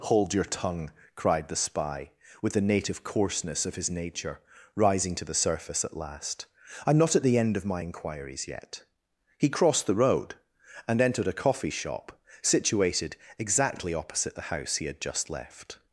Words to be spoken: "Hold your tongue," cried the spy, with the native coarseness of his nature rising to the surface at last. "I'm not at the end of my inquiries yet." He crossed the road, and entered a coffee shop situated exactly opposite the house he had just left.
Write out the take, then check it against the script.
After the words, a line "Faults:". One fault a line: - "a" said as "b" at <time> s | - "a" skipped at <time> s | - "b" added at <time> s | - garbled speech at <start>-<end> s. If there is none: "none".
"Hold your tongue," cried the spy, with the native coarseness of his nature rising to the surface at last. "I'm not at the end of my inquiries yet." He crossed the road, and entered a coffee shop situated exactly opposite the house he had just left.
Faults:
none